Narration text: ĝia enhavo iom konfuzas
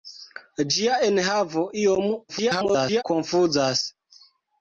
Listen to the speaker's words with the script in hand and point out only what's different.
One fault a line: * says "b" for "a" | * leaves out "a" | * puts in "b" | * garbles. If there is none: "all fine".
* garbles